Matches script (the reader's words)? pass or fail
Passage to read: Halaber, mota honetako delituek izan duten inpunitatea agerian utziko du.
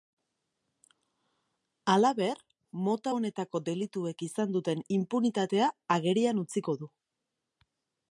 pass